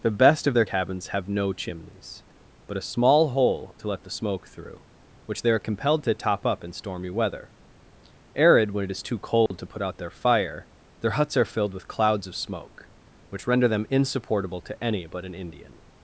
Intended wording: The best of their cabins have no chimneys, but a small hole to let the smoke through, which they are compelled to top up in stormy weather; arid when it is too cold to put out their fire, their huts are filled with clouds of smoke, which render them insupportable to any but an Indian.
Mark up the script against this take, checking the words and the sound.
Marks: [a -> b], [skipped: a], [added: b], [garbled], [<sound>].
The best of their cabins have no chimneys, but a small hole to let the smoke through, which they are compelled to top up in stormy weather; arid when it is too cold [dropout] to put out their fire, their huts are filled with clouds of smoke, which render them insupportable to any but an Indian.